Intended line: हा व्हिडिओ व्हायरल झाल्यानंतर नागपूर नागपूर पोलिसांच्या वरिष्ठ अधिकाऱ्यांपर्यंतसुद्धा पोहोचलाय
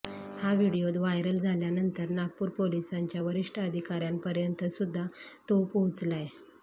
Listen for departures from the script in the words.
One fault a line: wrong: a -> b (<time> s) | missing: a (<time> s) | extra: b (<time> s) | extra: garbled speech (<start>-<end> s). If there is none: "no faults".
missing: नागपूर (2.5 s)
extra: तो (5.5 s)